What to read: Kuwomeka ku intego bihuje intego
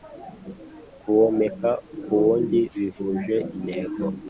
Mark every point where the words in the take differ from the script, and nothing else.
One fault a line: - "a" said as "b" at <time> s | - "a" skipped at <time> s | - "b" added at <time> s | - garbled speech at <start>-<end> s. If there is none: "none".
- "intego" said as "wundi" at 2.2 s